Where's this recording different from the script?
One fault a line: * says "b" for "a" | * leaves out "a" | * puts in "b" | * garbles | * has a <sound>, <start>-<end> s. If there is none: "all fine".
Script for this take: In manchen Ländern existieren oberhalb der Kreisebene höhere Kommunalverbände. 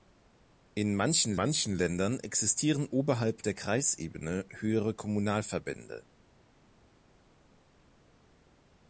* puts in "manchen"